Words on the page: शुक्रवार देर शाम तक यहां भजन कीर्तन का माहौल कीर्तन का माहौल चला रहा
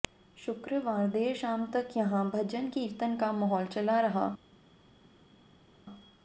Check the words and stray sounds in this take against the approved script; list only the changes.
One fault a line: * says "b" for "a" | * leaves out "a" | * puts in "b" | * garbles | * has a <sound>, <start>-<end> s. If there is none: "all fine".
* leaves out "कीर्तन का माहौल"